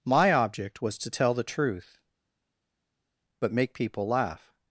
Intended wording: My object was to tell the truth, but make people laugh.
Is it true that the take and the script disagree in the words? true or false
false